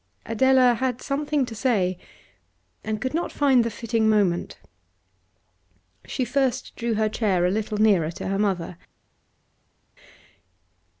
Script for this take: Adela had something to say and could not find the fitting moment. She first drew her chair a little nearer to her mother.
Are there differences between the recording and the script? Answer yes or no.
no